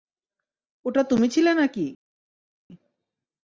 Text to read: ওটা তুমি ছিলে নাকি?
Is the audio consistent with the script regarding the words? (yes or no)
yes